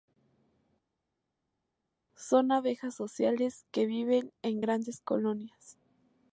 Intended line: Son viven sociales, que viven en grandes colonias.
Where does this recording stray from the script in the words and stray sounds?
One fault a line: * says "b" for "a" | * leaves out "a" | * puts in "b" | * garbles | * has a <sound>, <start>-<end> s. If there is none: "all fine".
* says "abejas" for "viven"